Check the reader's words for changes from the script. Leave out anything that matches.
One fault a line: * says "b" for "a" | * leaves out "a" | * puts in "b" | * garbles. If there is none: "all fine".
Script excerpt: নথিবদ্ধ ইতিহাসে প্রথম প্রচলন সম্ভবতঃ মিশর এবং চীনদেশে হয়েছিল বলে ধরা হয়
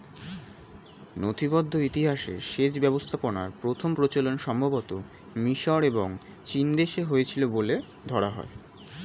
* puts in "সেচ ব্যবস্থাপনার"